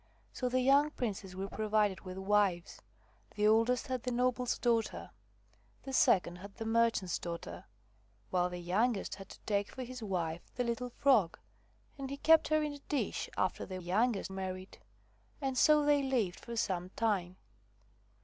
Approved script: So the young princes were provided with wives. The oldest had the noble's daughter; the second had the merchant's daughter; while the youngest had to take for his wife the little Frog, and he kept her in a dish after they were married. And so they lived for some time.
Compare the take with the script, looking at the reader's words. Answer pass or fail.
fail